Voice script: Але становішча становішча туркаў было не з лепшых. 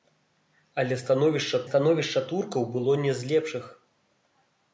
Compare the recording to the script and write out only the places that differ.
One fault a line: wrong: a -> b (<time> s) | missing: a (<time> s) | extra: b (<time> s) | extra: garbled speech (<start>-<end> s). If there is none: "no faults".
no faults